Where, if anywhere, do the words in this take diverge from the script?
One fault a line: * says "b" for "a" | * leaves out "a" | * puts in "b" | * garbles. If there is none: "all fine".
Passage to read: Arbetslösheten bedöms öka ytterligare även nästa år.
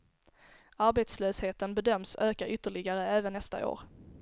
all fine